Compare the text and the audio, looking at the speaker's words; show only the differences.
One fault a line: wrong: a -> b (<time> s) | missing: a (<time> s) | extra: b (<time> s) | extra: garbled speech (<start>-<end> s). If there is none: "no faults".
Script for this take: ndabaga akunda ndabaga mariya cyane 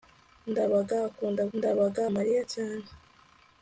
no faults